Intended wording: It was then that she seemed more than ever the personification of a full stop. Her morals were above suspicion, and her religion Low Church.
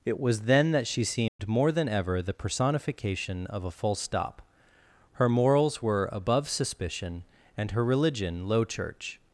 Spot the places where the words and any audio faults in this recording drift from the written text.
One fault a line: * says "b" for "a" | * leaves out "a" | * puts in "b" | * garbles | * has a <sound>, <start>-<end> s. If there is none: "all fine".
* has a dropout, 1.3-1.4 s